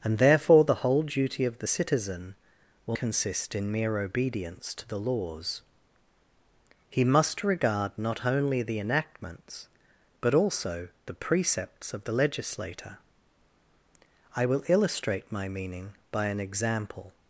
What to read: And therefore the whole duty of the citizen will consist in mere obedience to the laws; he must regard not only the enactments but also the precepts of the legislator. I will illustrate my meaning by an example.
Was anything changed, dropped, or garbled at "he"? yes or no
no